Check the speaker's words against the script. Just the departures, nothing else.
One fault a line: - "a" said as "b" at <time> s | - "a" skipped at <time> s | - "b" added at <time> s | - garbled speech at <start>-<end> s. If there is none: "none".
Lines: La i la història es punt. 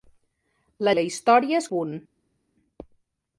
none